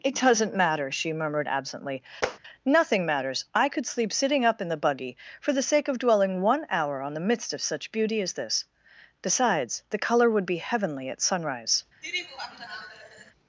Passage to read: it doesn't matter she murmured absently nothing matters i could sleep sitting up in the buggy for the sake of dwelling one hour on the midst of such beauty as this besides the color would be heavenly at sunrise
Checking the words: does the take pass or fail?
pass